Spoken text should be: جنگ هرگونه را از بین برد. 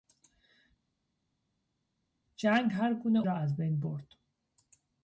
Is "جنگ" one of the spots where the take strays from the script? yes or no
no